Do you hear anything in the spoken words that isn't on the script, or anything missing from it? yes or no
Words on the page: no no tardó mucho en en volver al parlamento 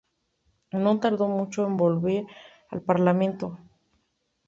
yes